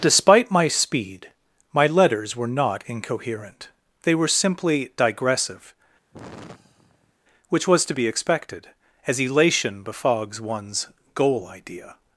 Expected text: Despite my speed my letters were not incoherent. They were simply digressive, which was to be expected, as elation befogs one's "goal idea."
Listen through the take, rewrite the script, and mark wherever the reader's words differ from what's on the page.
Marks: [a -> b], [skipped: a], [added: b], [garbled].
Despite my speed my letters were not incoherent. They were simply digressive, which was to be expected, as elation befogs one's "goal idea."